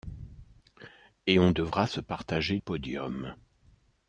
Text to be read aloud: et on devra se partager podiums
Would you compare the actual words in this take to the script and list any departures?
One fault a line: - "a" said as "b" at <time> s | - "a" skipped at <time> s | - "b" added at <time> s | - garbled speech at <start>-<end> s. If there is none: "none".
none